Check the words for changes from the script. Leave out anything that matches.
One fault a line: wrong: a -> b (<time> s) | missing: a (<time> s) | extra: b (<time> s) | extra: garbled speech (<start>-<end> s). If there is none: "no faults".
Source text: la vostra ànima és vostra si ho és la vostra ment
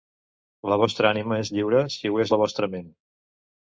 wrong: vostra -> lliure (1.6 s)